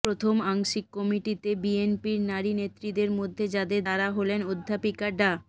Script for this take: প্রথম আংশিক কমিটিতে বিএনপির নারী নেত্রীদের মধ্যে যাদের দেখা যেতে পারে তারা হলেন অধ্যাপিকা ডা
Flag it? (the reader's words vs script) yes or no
yes